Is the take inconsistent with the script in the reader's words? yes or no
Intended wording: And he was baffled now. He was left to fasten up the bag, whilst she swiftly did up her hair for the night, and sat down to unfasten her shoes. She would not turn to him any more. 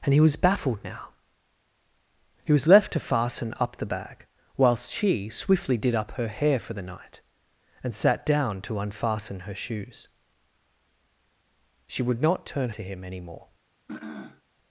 no